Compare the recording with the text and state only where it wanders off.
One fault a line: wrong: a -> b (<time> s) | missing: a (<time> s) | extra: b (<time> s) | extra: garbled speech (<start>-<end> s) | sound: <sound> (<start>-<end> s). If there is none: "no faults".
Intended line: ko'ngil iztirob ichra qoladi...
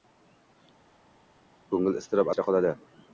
no faults